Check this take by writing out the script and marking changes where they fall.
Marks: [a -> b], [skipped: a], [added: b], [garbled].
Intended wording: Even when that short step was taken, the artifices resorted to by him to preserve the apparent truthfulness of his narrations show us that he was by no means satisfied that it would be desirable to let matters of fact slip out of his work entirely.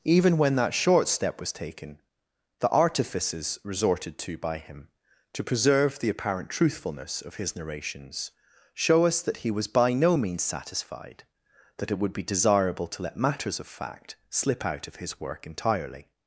Even when that short step was taken, the artifices resorted to by him to preserve the apparent truthfulness of his narrations show us that he was by no means satisfied that it would be desirable to let matters of fact slip out of his work entirely.